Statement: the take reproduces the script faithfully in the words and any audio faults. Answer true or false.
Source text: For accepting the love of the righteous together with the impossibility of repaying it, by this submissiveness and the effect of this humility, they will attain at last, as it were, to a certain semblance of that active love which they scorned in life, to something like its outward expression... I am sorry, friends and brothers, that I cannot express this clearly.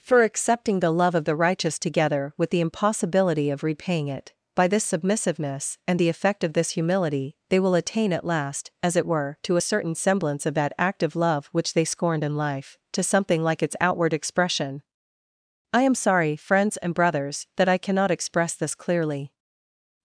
true